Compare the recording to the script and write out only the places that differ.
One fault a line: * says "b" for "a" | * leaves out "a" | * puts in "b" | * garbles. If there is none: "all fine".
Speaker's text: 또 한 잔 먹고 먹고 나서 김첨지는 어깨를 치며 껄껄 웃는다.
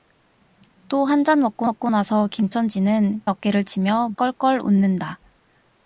all fine